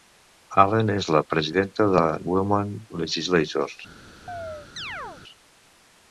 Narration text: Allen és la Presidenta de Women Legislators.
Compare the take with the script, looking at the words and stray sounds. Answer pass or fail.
fail